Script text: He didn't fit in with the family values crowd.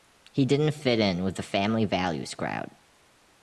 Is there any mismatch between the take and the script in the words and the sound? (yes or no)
no